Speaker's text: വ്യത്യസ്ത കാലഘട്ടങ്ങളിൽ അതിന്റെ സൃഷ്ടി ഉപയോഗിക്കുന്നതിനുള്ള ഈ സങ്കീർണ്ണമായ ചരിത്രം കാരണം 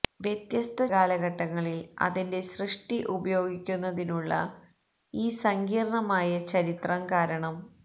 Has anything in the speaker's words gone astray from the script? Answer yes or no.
no